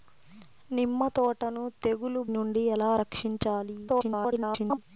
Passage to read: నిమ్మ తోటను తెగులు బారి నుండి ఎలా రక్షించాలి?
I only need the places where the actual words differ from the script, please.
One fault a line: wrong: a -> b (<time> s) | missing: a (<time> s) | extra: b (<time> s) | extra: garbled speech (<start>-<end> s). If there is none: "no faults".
missing: బారి (2.2 s)
extra: garbled speech (3.9-4.8 s)